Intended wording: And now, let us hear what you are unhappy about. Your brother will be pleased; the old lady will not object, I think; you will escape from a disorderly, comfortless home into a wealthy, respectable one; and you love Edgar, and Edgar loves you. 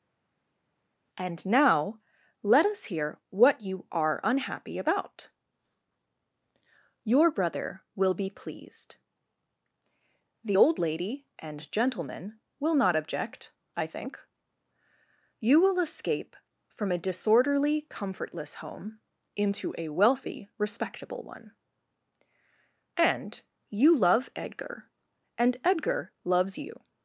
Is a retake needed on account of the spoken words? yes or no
yes